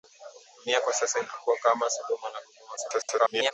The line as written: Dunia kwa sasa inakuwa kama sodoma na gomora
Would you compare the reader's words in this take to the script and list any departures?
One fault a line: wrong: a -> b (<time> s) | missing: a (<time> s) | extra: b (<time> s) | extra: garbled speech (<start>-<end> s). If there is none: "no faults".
extra: garbled speech (2.8-3.5 s)